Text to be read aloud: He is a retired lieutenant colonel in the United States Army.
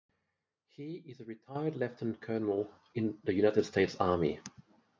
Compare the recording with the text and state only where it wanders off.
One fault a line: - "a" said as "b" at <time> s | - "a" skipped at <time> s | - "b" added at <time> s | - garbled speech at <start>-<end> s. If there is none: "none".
none